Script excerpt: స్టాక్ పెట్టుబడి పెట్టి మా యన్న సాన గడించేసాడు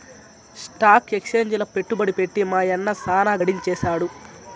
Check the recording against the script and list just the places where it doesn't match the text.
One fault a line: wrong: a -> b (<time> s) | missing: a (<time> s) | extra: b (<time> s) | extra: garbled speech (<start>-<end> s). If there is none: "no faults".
extra: ఎక్సేంజిల (1.1 s)